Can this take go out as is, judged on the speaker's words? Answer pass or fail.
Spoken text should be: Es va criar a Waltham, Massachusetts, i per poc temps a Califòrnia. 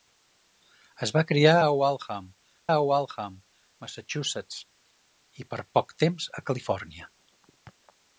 fail